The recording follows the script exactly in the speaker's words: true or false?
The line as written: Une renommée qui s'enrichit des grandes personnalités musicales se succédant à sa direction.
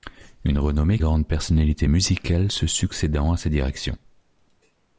false